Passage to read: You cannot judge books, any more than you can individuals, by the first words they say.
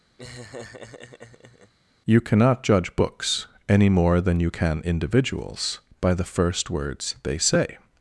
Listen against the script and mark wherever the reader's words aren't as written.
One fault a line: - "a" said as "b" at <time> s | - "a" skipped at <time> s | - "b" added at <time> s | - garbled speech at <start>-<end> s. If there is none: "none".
none